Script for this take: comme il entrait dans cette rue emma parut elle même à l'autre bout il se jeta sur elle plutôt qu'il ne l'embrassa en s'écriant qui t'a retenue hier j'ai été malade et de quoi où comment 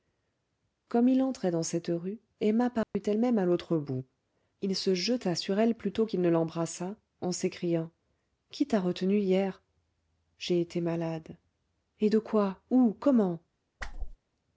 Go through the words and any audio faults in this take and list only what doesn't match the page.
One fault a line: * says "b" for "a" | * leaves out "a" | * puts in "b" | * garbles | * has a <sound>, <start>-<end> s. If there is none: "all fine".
* has a dropout, 2.8-2.9 s
* has a whoosh, 13.8-14.2 s